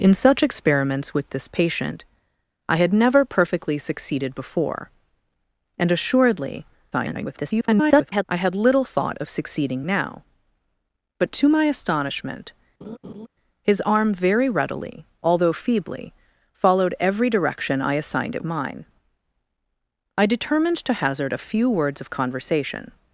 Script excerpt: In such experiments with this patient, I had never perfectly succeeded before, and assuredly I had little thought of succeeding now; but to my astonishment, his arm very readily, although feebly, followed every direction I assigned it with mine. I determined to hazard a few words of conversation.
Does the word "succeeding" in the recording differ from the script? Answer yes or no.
no